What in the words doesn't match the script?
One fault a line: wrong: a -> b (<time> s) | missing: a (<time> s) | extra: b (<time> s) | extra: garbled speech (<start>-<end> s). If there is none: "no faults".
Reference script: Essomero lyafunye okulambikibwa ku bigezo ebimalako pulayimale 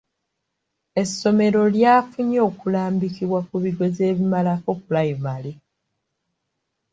no faults